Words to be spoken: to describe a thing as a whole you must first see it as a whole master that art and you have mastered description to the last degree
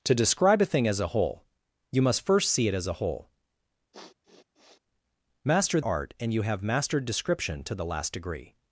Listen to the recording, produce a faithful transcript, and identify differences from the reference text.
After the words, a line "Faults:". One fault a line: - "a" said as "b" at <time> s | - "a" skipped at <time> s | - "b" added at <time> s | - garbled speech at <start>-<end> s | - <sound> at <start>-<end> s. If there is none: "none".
to describe a thing as a whole you must first see it as a whole master art and you have mastered description to the last degree
Faults:
- sniff at 3.9-4.8 s
- "that" skipped at 5.8 s